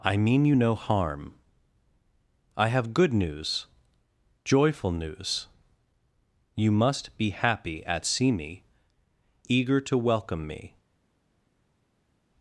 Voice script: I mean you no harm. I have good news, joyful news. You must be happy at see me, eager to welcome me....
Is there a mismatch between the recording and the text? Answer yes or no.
no